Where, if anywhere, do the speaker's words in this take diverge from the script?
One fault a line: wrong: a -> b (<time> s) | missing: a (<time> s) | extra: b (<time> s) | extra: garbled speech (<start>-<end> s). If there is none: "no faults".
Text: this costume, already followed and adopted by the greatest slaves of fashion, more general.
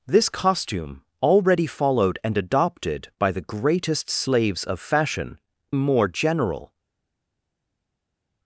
no faults